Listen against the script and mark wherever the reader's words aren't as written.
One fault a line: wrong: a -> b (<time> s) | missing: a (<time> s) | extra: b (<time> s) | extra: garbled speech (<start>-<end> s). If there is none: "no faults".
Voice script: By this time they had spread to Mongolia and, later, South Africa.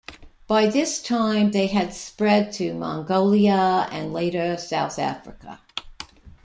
no faults